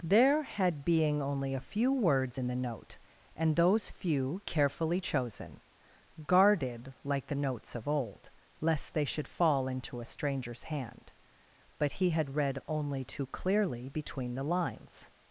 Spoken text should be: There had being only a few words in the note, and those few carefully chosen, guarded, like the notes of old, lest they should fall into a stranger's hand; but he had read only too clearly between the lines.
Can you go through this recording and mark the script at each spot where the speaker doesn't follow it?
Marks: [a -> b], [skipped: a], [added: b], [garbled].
There had being only a few words in the note, and those few carefully chosen, guarded, like the notes of old, lest they should fall into a stranger's hand; but he had read only too clearly between the lines.